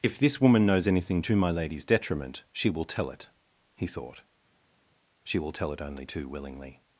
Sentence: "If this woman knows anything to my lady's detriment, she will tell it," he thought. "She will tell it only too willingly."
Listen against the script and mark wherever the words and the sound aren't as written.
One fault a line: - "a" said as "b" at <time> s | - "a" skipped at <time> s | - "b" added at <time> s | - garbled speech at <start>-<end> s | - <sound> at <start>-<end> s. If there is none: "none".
none